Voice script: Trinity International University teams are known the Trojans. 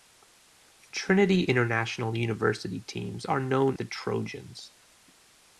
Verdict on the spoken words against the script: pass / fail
pass